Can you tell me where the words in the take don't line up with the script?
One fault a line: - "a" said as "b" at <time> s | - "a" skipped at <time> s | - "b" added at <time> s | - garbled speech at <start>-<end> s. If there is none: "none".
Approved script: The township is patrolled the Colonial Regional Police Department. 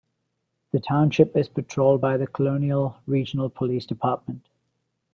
- "by" added at 2.0 s